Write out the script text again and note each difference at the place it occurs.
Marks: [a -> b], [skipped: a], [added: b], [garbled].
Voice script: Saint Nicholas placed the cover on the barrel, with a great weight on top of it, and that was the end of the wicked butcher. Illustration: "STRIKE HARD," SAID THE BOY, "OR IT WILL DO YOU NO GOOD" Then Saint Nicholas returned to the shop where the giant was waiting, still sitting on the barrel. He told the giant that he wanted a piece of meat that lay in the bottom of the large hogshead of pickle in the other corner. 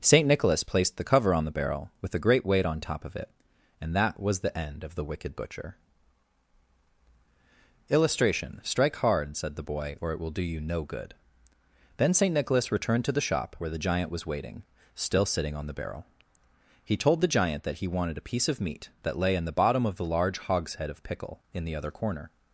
Saint Nicholas placed the cover on the barrel, with a great weight on top of it, and that was the end of the wicked butcher. Illustration: "STRIKE HARD," SAID THE BOY, "OR IT WILL DO YOU NO GOOD" Then Saint Nicholas returned to the shop where the giant was waiting, still sitting on the barrel. He told the giant that he wanted a piece of meat that lay in the bottom of the large hogshead of pickle in the other corner.